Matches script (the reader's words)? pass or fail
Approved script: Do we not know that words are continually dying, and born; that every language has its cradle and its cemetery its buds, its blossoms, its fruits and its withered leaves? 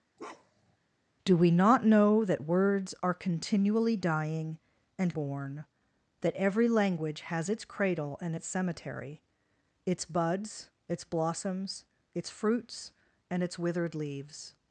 pass